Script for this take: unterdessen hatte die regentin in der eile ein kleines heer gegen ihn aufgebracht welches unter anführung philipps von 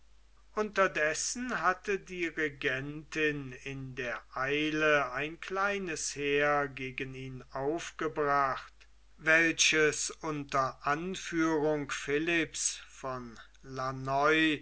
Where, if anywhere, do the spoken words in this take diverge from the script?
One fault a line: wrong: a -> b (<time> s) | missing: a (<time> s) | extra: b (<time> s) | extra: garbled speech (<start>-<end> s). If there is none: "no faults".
no faults